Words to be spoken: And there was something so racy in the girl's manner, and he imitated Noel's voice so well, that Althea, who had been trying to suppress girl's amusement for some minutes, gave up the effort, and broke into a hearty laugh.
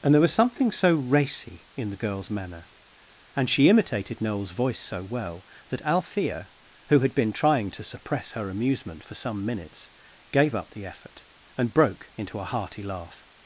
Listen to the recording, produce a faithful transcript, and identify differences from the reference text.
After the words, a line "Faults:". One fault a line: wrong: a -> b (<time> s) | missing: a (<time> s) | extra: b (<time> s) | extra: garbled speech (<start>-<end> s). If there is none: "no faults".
And there was something so racy in the girl's manner, and she imitated Noel's voice so well, that Althea, who had been trying to suppress her amusement for some minutes, gave up the effort, and broke into a hearty laugh.
Faults:
wrong: he -> she (3.5 s)
wrong: girl's -> her (8.3 s)